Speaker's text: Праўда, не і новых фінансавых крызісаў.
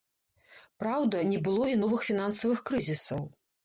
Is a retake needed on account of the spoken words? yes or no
yes